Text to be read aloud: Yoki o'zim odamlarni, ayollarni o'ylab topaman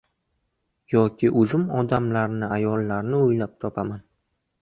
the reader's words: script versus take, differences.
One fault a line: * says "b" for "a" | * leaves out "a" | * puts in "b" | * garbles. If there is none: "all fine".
all fine